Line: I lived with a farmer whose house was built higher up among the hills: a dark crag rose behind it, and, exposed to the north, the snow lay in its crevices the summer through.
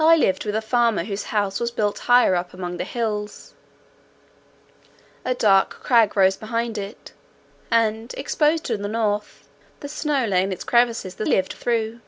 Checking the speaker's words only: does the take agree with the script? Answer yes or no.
no